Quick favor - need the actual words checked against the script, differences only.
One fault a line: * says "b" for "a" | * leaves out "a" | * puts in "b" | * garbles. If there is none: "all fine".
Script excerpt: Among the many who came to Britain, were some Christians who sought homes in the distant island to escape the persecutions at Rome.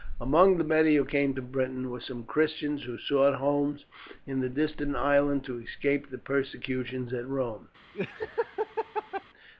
all fine